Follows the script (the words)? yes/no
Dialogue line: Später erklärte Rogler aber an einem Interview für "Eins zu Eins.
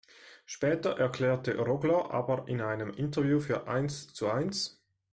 no